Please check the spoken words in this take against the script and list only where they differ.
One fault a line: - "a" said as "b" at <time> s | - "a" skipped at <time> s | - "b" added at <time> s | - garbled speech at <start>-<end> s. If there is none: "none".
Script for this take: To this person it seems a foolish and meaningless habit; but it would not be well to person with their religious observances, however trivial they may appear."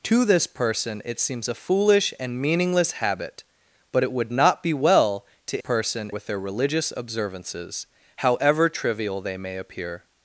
none